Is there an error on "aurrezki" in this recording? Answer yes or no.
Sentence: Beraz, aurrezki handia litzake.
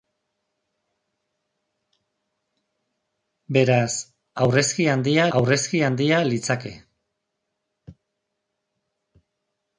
no